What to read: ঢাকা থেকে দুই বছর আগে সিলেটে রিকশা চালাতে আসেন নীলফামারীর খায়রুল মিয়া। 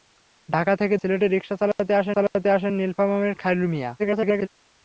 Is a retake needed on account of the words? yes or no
yes